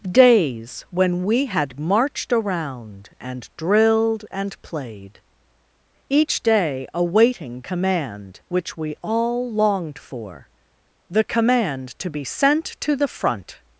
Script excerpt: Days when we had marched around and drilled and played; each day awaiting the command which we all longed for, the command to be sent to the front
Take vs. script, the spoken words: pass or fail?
fail